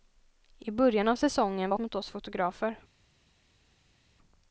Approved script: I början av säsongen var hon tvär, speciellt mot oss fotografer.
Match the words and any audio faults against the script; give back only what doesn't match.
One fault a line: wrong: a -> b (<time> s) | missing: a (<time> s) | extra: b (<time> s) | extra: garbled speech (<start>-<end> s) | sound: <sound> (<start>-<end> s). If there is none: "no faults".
missing: hon tvär speciellt (1.8 s)